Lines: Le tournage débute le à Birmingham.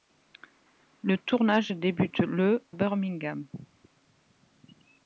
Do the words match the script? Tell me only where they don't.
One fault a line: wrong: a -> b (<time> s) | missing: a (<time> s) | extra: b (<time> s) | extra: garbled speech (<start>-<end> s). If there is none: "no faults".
missing: à (2.6 s)